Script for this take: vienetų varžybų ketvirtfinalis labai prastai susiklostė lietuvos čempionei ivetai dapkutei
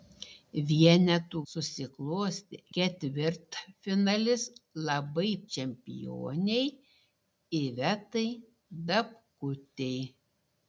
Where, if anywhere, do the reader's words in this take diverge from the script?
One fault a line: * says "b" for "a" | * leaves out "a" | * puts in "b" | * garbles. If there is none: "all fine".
* says "susiklostė" for "varžybų"
* leaves out "prastai susiklostė lietuvos"